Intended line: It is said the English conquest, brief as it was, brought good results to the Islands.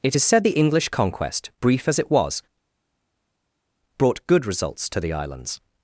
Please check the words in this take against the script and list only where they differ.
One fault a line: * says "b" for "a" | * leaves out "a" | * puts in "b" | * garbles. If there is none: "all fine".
all fine